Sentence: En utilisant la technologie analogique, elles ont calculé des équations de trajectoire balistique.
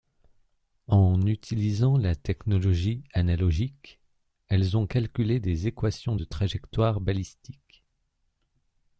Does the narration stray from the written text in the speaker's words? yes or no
no